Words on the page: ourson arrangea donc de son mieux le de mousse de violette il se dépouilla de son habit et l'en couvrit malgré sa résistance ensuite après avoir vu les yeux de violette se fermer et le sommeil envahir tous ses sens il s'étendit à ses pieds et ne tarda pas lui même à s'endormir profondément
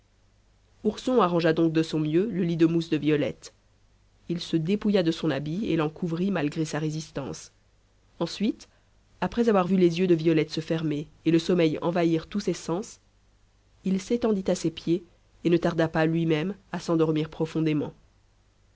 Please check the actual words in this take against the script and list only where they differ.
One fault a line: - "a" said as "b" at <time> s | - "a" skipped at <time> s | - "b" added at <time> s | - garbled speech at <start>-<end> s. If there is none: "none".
- "lit" added at 2.4 s